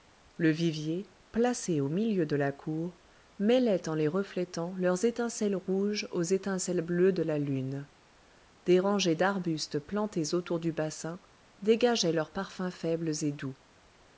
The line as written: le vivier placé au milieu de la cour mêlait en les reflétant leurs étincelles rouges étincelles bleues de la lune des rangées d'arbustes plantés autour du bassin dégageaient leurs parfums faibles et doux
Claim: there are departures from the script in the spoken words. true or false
true